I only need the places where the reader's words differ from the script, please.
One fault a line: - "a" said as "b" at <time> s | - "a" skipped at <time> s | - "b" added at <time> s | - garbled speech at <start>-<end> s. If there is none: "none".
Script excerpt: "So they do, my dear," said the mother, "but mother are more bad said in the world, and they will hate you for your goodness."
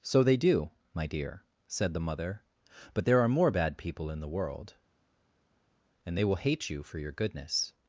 - "mother" said as "there" at 3.0 s
- "said" said as "people" at 3.8 s